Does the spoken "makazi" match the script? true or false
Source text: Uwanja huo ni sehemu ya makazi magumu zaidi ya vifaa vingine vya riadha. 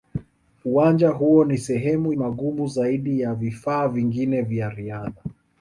false